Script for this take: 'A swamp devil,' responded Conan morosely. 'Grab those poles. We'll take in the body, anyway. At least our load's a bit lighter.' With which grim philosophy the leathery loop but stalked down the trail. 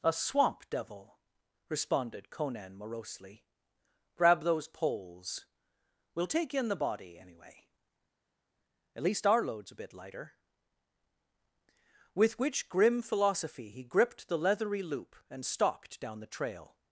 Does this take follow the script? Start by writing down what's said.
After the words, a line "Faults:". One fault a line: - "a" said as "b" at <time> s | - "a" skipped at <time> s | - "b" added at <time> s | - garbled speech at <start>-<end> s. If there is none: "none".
'A swamp devil,' responded Conan morosely. 'Grab those poles. We'll take in the body, anyway. At least our load's a bit lighter.' With which grim philosophy he gripped the leathery loop and stalked down the trail.
Faults:
- "he gripped" added at 13.7 s
- "but" said as "and" at 15.3 s